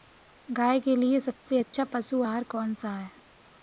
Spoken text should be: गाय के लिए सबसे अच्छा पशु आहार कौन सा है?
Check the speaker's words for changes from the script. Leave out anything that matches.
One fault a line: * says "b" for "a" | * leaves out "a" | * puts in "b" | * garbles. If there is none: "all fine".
all fine